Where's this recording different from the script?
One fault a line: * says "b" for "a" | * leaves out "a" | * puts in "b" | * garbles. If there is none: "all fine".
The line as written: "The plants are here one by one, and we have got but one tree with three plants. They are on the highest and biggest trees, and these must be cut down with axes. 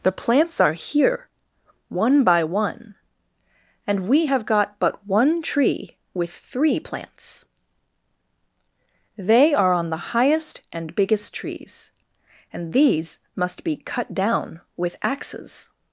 all fine